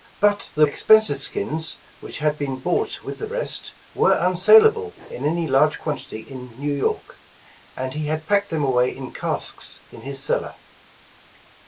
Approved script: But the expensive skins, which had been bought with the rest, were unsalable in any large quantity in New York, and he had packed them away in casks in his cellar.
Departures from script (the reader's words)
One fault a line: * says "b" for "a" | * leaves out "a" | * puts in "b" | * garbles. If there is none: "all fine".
all fine